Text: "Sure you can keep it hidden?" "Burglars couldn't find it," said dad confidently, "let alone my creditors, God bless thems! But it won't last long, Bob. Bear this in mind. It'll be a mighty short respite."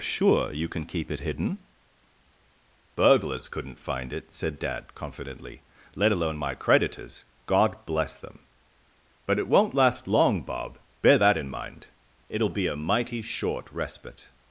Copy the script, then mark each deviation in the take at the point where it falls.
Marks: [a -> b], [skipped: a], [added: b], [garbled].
"Sure you can keep it hidden?" "Burglars couldn't find it," said dad confidently, "let alone my creditors, God bless [thems! -> them] But it won't last long, Bob. Bear [this -> that] in mind. It'll be a mighty short respite."